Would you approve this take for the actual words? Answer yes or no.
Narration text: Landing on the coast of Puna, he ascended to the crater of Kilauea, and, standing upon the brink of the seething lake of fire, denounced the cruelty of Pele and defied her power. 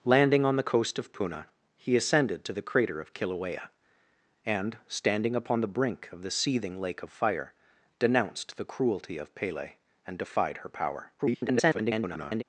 no